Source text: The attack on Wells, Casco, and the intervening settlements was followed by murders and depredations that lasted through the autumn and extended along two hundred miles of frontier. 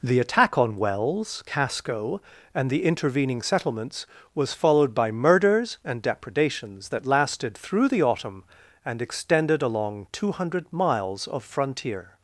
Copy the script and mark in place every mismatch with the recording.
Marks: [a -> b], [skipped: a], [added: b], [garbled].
The attack on Wells, Casco, and the intervening settlements was followed by murders and depredations that lasted through the autumn and extended along two hundred miles of frontier.